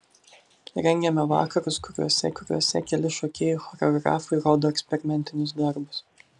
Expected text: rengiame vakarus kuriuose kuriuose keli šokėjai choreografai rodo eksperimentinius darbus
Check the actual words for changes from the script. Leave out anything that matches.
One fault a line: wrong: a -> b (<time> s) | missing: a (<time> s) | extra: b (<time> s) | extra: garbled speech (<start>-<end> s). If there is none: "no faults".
no faults